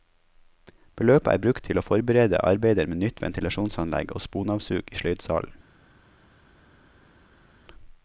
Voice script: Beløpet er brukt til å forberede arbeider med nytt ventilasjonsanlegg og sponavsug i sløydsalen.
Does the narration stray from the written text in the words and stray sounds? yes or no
no